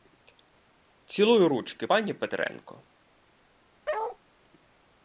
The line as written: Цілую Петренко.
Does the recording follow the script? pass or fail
fail